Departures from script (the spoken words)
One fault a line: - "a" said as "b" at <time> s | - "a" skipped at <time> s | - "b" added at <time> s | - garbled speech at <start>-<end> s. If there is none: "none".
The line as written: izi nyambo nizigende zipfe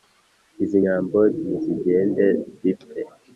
none